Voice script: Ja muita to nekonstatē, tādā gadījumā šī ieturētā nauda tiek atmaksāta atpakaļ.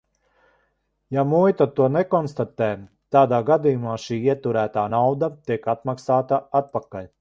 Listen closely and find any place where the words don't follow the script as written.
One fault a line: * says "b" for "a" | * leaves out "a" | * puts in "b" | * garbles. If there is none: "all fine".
all fine